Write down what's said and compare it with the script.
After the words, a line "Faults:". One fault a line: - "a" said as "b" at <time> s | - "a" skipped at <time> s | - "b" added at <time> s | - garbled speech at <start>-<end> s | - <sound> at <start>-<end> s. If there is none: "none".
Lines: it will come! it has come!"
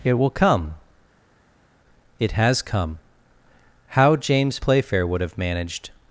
it will come! it has come!" How James Playfair would have managed
Faults:
- "How James Playfair would have managed" added at 3.9 s